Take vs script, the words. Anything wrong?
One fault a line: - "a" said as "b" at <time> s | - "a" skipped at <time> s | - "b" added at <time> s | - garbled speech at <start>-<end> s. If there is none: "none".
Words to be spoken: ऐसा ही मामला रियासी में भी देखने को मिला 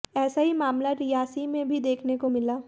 none